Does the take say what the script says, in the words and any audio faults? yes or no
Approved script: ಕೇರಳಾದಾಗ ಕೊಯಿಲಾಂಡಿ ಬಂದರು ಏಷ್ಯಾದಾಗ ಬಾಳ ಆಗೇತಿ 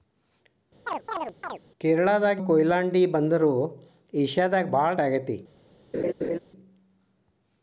no